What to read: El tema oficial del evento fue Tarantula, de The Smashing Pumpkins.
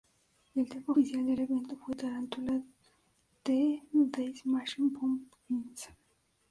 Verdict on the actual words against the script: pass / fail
pass